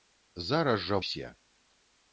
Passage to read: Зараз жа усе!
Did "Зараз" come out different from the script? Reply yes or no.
no